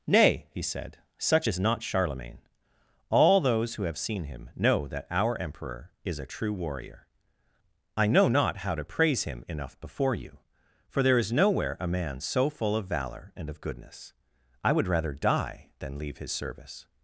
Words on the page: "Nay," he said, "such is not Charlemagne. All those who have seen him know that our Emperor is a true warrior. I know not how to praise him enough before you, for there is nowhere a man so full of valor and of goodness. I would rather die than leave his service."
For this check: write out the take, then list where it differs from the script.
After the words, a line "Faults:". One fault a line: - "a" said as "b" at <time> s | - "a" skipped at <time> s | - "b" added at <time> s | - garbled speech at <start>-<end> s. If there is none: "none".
"Nay," he said, "such is not Charlemagne. All those who have seen him know that our Emperor is a true warrior. I know not how to praise him enough before you, for there is nowhere a man so full of valor and of goodness. I would rather die than leave his service."
Faults:
none